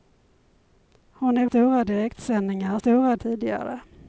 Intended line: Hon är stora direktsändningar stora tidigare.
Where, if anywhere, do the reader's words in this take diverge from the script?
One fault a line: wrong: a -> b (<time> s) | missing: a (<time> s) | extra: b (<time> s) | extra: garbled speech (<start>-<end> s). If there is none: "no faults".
no faults